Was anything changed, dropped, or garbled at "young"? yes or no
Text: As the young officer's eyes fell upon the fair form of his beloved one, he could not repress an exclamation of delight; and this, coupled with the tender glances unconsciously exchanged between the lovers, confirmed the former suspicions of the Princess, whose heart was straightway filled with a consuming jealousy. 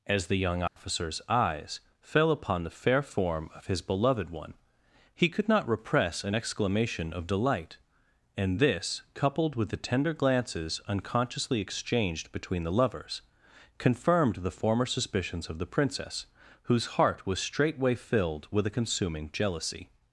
no